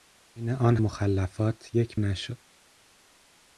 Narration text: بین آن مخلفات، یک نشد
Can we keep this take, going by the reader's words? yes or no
yes